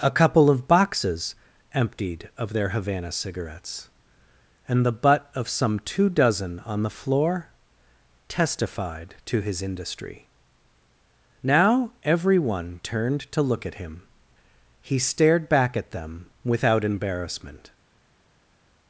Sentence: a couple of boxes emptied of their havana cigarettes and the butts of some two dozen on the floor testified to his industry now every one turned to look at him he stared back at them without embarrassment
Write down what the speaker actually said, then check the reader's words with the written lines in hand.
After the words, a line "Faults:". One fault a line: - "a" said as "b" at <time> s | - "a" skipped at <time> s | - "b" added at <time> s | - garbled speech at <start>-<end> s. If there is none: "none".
a couple of boxes emptied of their havana cigarettes and the butt of some two dozen on the floor testified to his industry now every one turned to look at him he stared back at them without embarrassment
Faults:
- "butts" said as "butt" at 4.9 s